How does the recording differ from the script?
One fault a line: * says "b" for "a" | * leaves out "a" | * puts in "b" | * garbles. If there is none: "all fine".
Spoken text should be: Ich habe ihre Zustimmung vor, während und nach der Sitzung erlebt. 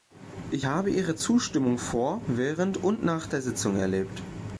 all fine